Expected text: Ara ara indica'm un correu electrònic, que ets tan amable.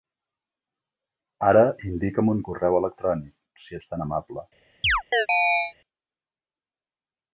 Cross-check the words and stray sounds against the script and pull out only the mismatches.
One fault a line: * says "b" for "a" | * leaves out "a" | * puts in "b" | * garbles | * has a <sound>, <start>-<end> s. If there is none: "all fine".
* leaves out "ara"
* says "si" for "que"
* has a chirp, 4.8-5.7 s